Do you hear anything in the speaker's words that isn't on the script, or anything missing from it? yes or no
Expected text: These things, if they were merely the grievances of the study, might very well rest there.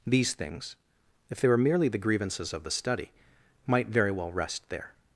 no